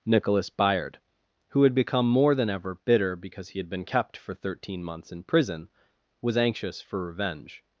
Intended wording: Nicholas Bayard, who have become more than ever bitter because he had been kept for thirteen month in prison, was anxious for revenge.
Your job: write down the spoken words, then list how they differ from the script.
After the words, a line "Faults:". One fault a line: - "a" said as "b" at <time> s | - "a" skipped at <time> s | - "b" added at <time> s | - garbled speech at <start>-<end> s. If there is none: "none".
Nicholas Bayard, who had become more than ever bitter because he had been kept for thirteen months in prison, was anxious for revenge.
Faults:
- "have" said as "had" at 1.6 s
- "month" said as "months" at 4.8 s